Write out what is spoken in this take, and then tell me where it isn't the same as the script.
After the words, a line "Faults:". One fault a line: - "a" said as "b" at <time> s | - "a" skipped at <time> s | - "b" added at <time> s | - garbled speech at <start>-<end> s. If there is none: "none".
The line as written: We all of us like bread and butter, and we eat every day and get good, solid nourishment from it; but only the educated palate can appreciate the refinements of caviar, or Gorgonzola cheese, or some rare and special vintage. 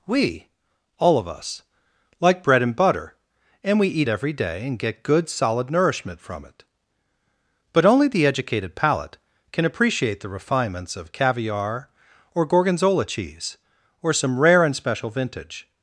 We all of us like bread and butter, and we eat every day and get good, solid nourishment from it; but only the educated palate can appreciate the refinements of caviar, or Gorgonzola cheese, or some rare and special vintage.
Faults:
none